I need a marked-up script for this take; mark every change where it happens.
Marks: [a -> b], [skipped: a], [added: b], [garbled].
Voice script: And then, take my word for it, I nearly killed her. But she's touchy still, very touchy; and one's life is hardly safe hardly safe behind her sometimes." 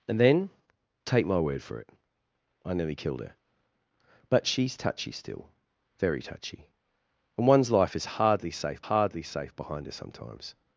And then, take my word for it, I nearly killed her. But she's touchy still, very touchy; and one's life is hardly safe hardly safe behind her sometimes."